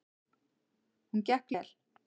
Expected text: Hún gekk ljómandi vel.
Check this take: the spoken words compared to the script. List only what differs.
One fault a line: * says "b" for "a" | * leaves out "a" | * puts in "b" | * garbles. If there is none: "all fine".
* leaves out "ljómandi"